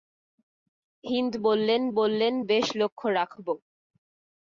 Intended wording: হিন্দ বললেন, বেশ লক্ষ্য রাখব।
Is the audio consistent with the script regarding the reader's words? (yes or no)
no